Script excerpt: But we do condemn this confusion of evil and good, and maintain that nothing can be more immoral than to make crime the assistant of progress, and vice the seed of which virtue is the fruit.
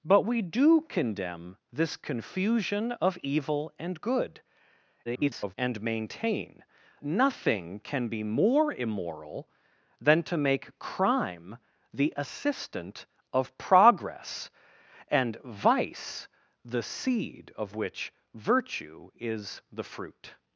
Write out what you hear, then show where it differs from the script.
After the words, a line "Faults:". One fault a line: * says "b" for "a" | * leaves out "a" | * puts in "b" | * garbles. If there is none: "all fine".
But we do condemn this confusion of evil and good, [garbled] and maintain nothing can be more immoral than to make crime the assistant of progress, and vice the seed of which virtue is the fruit.
Faults:
* garbles
* leaves out "that"